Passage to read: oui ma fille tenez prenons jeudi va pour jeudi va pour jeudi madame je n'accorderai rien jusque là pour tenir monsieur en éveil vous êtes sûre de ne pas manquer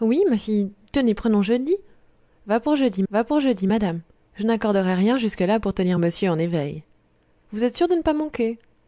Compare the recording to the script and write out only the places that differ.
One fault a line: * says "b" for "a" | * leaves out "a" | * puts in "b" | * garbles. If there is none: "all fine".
all fine